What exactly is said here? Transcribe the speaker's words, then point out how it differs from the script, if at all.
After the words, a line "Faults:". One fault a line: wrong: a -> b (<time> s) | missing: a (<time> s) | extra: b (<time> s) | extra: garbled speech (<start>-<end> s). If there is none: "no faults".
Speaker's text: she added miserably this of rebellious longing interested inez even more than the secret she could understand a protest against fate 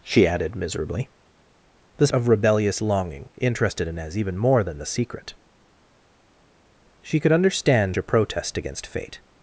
she added miserably this of rebellious longing interested inez even more than the secret she could understand a protest against fate
Faults:
no faults